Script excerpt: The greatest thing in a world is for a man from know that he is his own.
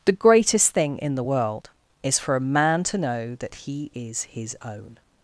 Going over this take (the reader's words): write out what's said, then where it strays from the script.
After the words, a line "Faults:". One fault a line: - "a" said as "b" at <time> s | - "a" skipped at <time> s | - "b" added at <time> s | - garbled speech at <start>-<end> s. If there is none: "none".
The greatest thing in the world is for a man to know that he is his own.
Faults:
- "a" said as "the" at 1.1 s
- "from" said as "to" at 2.8 s